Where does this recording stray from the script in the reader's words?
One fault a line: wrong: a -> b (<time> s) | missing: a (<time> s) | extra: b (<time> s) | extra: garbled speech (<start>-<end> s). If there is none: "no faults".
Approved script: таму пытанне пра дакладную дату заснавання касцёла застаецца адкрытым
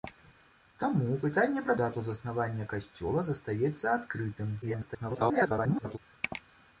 missing: дакладную (1.7 s)
extra: garbled speech (4.6-6.0 s)